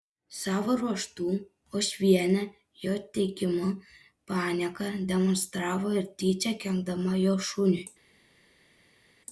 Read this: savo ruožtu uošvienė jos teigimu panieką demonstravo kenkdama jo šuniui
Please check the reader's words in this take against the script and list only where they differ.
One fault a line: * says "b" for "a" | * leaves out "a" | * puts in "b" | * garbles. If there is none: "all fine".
* says "jo" for "jos"
* puts in "ir tyčia"